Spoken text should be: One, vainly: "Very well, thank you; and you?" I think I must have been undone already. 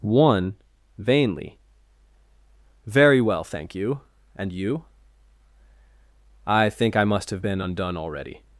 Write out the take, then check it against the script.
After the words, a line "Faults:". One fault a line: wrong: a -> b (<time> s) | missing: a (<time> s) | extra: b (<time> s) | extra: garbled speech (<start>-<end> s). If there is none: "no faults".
One, vainly: "Very well, thank you; and you?" I think I must have been undone already.
Faults:
no faults